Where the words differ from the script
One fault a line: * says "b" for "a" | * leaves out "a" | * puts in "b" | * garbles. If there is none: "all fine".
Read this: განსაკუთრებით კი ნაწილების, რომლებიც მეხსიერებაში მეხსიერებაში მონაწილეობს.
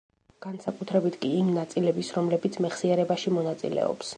* puts in "იმ"
* leaves out "მეხსიერებაში"